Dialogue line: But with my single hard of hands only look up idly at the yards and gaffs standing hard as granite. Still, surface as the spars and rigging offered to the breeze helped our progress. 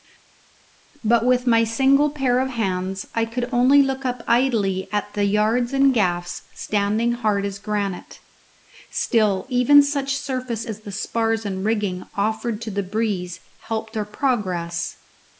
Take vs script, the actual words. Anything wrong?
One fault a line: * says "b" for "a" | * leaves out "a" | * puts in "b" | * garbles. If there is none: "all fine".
* says "pair" for "hard"
* puts in "I could"
* puts in "even such"